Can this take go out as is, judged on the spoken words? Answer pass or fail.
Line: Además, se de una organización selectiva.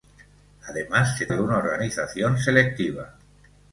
pass